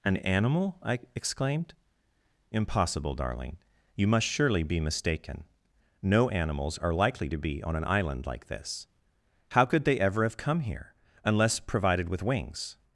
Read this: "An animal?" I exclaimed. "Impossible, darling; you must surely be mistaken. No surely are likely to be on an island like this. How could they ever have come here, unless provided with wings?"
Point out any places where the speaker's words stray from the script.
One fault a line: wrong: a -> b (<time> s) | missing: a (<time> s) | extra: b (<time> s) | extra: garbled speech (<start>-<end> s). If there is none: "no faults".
wrong: surely -> animals (6.3 s)